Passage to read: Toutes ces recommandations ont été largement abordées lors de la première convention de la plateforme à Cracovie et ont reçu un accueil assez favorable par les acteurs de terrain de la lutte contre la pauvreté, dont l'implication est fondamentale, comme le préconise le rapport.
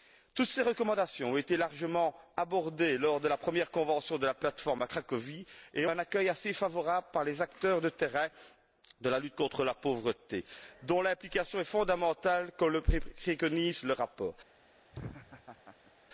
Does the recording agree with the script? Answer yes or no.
no